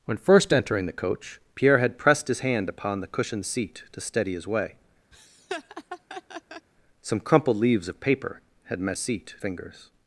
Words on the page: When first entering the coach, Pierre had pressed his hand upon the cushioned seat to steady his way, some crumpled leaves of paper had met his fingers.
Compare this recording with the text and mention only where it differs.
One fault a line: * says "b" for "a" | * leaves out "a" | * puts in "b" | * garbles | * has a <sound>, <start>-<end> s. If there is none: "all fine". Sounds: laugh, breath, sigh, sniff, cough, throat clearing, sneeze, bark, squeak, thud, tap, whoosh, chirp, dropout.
* has a laugh, 5.1-6.7 s
* says "seat" for "his"